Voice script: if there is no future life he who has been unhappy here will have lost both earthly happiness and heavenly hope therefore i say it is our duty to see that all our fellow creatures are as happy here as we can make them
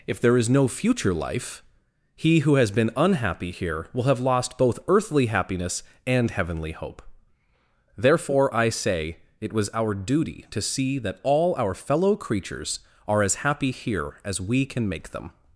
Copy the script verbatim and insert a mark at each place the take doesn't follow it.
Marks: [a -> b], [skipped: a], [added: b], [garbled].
if there is no future life he who has been unhappy here will have lost both earthly happiness and heavenly hope therefore i say it [is -> was] our duty to see that all our fellow creatures are as happy here as we can make them